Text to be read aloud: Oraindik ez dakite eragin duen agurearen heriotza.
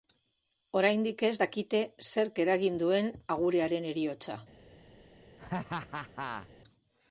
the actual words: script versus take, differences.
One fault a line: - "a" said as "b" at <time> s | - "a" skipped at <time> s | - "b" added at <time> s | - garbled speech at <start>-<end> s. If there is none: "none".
- "zerk" added at 2.1 s